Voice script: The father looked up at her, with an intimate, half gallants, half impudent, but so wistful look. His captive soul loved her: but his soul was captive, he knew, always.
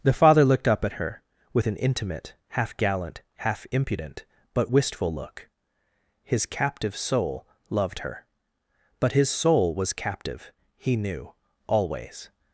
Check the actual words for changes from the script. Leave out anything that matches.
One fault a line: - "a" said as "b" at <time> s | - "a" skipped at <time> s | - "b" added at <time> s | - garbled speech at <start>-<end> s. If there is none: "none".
- "gallants" said as "gallant" at 2.8 s
- "so" skipped at 4.7 s